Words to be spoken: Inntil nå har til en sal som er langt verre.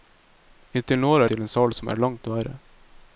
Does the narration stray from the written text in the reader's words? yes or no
no